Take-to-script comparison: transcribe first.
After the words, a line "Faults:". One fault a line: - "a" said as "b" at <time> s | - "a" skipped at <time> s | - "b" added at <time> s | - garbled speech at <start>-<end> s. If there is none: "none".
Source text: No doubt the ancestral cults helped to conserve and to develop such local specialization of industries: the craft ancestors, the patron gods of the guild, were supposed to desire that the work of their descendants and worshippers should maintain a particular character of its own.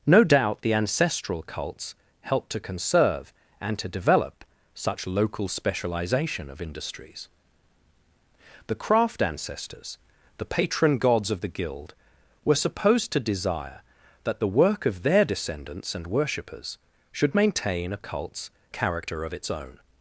No doubt the ancestral cults helped to conserve and to develop such local specialization of industries: the craft ancestors, the patron gods of the guild, were supposed to desire that the work of their descendants and worshippers should maintain a cults character of its own.
Faults:
- "particular" said as "cults" at 18.0 s